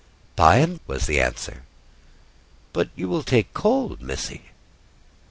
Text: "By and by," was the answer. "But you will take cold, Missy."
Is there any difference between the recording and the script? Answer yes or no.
yes